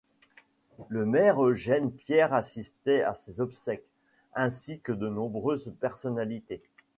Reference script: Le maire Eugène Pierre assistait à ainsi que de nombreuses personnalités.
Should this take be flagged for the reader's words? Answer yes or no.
yes